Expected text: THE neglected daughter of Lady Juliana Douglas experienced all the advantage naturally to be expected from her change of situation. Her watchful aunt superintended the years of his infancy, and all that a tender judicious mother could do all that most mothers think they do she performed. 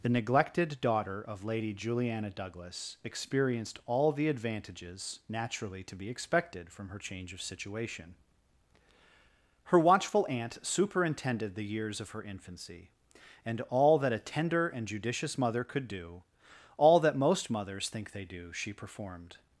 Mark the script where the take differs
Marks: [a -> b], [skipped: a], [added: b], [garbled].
THE neglected daughter of Lady Juliana Douglas experienced all the [advantage -> advantages] naturally to be expected from her change of situation. Her watchful aunt superintended the years of [his -> her] infancy, and all that a tender [added: and] judicious mother could do all that most mothers think they do she performed.